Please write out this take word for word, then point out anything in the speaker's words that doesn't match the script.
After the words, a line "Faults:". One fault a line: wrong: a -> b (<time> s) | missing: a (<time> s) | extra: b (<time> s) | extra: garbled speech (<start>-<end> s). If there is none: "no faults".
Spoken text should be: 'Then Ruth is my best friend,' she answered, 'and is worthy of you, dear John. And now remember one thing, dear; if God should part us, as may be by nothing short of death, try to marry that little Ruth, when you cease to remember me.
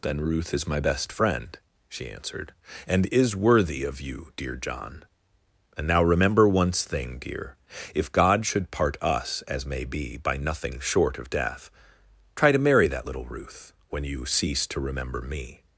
'Then Ruth is my best friend,' she answered, 'and is worthy of you, dear John. And now remember once thing, dear; if God should part us, as may be by nothing short of death, try to marry that little Ruth, when you cease to remember me.
Faults:
wrong: one -> once (6.5 s)